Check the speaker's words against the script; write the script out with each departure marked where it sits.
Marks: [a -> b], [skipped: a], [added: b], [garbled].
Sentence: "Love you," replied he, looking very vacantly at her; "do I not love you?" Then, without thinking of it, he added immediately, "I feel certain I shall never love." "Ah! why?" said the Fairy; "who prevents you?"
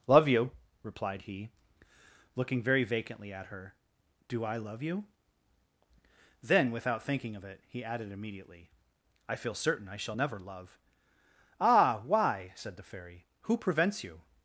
"Love you," replied he, looking very vacantly at her; "do I [skipped: not] love you?" Then, without thinking of it, he added immediately, "I feel certain I shall never love." "Ah! why?" said the Fairy; "who prevents you?"